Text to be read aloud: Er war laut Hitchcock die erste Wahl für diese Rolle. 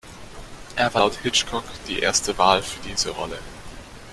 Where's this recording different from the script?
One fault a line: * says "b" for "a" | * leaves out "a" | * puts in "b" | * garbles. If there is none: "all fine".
all fine